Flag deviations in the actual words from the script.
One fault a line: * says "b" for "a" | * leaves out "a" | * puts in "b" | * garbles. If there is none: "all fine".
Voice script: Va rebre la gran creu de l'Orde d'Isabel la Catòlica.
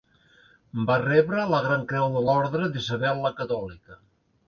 all fine